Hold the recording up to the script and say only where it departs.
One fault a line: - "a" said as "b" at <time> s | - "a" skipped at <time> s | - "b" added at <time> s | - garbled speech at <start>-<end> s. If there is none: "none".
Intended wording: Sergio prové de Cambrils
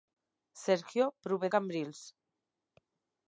- "de" skipped at 1.5 s